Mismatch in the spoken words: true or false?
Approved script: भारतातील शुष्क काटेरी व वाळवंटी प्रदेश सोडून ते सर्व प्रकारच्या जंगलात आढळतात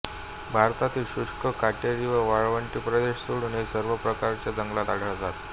false